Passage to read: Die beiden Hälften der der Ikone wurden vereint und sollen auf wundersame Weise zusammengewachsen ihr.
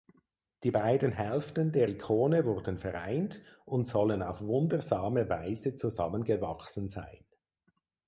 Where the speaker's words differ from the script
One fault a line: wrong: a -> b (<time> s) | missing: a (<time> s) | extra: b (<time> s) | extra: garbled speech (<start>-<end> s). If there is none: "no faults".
missing: der (1.9 s)
wrong: ihr -> sein (6.9 s)